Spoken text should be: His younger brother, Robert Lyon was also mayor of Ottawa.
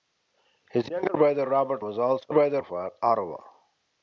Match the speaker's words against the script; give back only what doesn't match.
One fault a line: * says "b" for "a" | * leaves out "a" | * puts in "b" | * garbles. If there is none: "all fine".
* leaves out "Lyon"
* says "brother" for "mayor"